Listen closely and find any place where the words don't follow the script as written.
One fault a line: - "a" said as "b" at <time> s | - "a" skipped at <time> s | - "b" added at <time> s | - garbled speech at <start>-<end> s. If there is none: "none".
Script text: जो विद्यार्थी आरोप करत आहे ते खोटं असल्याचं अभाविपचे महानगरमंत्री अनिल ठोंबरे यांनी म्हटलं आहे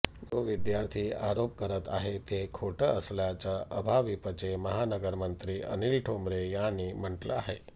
none